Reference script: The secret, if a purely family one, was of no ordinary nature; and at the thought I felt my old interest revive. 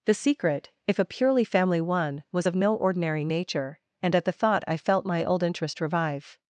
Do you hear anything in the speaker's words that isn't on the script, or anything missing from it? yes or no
no